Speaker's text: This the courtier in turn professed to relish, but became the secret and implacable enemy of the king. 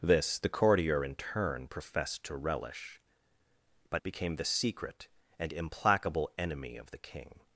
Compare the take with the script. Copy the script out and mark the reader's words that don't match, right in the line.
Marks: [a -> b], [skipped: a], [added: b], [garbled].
This the courtier in turn professed to relish, but became the secret and implacable enemy of the king.